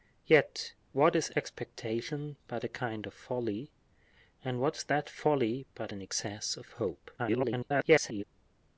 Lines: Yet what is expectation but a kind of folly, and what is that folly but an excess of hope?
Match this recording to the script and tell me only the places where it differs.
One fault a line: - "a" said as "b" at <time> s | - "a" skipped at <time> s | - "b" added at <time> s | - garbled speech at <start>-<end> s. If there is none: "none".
- garbled speech at 7.2-8.2 s